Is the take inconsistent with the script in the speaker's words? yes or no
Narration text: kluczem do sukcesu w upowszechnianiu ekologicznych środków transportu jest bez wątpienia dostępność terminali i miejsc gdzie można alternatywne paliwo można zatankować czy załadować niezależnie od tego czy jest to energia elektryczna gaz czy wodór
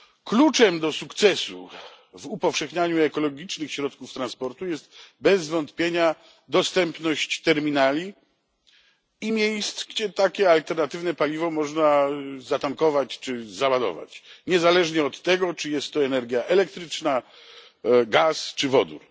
yes